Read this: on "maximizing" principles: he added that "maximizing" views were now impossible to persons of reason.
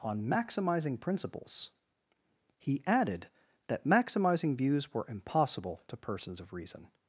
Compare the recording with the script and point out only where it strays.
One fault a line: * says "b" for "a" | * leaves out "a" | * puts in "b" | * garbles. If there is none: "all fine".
* leaves out "now"